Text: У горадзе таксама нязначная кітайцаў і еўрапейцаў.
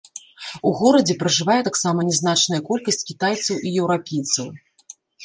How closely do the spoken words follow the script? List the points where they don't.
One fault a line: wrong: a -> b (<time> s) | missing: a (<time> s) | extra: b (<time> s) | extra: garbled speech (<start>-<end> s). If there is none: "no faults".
extra: пражывае (1.2 s)
extra: колькасць (2.7 s)